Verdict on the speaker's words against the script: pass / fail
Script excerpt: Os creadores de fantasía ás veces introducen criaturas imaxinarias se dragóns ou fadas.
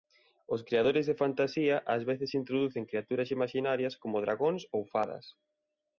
fail